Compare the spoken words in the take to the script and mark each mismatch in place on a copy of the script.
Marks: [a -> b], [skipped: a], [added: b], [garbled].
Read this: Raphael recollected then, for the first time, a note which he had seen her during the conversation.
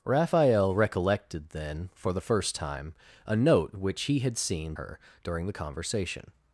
Raphael recollected then, for the first time, a note which he had seen her during the conversation.